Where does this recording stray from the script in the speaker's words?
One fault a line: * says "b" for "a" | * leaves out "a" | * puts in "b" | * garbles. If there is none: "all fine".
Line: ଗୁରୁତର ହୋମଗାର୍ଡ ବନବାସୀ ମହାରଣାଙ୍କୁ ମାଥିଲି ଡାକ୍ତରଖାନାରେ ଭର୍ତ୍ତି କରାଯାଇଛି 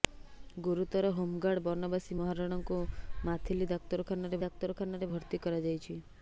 * puts in "ଡାକ୍ତରଖାନାରେ"